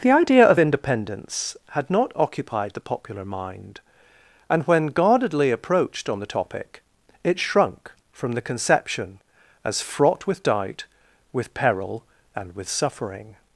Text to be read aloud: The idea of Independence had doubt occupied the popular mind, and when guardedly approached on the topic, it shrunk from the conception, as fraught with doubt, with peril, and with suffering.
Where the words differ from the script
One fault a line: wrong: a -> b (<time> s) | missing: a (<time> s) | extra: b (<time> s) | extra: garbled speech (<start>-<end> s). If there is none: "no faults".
wrong: doubt -> not (1.9 s)